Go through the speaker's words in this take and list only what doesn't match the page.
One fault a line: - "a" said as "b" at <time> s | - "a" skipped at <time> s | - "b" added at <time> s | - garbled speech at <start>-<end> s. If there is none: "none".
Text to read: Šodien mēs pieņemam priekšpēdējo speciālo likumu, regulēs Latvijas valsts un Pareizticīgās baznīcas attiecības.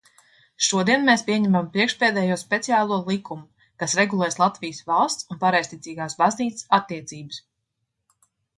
- "kas" added at 3.8 s